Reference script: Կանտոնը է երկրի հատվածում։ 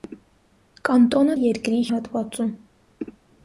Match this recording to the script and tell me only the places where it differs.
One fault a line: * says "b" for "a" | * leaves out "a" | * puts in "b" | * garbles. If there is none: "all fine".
all fine